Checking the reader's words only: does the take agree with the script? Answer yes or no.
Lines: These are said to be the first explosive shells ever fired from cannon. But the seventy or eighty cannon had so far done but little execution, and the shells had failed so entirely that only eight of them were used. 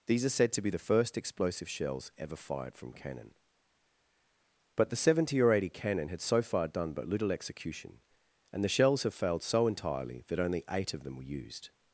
no